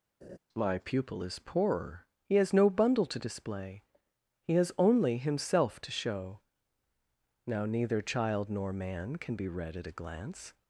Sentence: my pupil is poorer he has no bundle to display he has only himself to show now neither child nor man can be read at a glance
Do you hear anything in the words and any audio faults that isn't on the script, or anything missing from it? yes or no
yes